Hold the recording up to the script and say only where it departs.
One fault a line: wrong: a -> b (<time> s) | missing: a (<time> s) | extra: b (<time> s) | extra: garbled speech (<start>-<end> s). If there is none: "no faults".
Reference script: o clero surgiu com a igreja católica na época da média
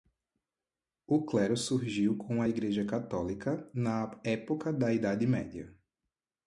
extra: idade (4.9 s)